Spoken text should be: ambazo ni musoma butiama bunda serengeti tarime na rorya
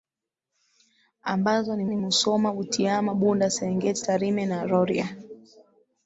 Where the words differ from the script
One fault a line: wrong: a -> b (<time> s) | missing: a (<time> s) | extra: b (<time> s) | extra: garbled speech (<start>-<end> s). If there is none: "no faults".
extra: ni (1.9 s)